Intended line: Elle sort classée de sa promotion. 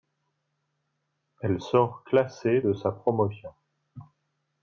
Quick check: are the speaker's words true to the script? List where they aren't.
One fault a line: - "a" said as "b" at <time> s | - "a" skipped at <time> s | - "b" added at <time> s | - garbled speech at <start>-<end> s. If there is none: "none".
none